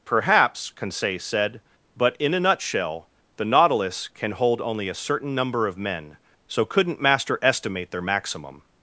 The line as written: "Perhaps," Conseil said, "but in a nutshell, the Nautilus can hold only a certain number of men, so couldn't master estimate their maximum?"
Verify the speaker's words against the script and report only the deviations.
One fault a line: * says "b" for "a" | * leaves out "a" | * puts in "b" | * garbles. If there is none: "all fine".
all fine